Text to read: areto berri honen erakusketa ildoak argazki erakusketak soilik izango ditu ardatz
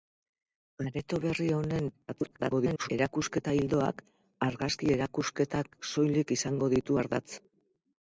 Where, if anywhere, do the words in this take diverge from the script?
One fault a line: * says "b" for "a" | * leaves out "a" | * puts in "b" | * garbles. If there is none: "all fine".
* garbles